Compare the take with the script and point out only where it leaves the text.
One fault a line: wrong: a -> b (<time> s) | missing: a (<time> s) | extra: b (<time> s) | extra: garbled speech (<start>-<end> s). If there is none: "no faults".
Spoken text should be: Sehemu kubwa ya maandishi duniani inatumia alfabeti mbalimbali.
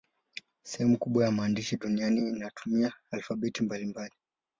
no faults